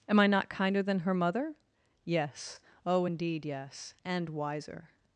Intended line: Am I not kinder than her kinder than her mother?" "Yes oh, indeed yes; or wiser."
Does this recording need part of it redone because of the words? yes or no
yes